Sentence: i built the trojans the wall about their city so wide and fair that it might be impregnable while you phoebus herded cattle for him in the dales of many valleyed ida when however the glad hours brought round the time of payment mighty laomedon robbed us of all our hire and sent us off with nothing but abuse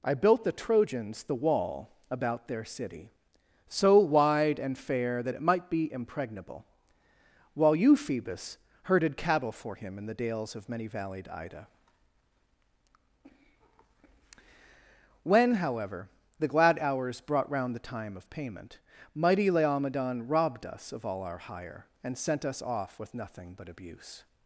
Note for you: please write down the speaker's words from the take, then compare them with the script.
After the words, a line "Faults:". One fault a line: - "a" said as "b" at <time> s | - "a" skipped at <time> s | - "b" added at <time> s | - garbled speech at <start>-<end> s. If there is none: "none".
i built the trojans the wall about their city so wide and fair that it might be impregnable while you phoebus herded cattle for him in the dales of many valleyed ida when however the glad hours brought round the time of payment mighty laomedon robbed us of all our hire and sent us off with nothing but abuse
Faults:
none